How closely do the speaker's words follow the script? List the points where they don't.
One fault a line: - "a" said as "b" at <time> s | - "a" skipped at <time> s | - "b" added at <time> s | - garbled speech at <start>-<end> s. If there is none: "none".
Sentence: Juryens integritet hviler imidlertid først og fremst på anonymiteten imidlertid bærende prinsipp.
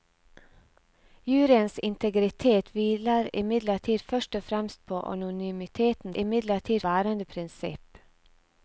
none